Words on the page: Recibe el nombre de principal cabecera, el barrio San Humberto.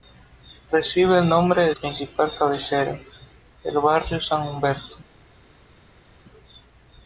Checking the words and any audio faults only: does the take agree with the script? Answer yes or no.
yes